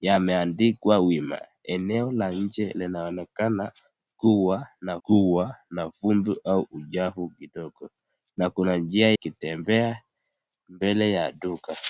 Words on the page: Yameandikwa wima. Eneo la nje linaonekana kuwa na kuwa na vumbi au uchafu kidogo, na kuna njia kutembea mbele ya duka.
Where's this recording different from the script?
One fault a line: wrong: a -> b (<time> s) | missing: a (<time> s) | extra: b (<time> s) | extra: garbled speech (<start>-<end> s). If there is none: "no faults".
no faults